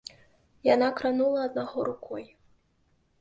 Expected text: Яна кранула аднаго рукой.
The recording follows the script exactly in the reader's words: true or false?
true